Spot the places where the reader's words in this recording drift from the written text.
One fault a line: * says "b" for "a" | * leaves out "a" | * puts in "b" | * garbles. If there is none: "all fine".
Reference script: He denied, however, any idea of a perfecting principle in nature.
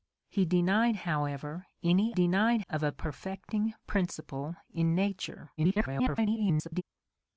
* says "denied" for "idea"
* garbles